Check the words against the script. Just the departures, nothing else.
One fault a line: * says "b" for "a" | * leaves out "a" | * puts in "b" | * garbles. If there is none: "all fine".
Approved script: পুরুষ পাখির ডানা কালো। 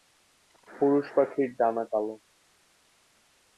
all fine